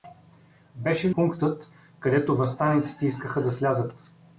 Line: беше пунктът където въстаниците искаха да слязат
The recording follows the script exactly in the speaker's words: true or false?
true